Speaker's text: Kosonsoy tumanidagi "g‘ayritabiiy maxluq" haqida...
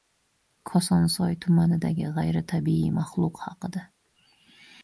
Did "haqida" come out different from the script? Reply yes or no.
no